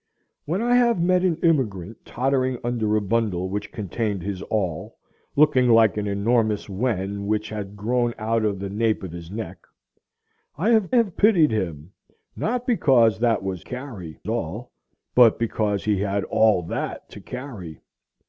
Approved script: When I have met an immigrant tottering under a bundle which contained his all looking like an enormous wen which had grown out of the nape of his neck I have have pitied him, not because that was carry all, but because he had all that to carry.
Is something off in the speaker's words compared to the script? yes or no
no